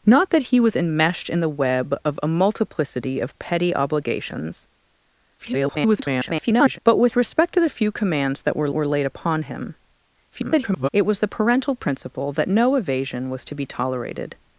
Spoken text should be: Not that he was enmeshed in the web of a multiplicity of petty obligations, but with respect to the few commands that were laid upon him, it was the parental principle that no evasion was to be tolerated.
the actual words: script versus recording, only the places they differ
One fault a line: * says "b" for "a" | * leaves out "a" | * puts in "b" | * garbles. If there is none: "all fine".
* garbles
* puts in "were"
* garbles